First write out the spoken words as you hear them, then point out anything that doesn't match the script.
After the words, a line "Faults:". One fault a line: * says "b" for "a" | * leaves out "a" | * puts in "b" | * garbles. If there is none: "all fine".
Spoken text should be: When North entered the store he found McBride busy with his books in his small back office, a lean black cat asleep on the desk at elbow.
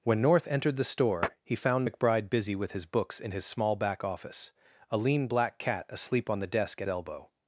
When North entered the store he found McBride busy with his books in his small back office, a lean black cat asleep on the desk at elbow.
Faults:
all fine